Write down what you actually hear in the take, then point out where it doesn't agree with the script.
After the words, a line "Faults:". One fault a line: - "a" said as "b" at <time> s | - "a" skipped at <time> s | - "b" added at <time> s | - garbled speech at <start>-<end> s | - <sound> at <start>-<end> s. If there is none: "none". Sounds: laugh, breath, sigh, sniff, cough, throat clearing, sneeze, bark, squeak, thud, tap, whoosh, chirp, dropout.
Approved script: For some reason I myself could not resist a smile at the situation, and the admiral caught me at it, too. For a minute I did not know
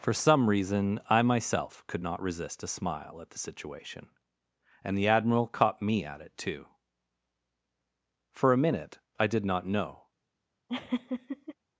For some reason I myself could not resist a smile at the situation, and the admiral caught me at it, too. For a minute I did not know
Faults:
- laugh at 10.7-11.5 s